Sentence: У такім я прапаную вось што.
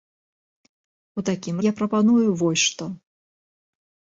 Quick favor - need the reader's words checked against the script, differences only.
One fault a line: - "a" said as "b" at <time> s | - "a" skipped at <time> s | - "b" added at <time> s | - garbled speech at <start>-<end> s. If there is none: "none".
none